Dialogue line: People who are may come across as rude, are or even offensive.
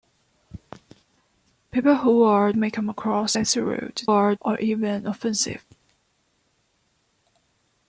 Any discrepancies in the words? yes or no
no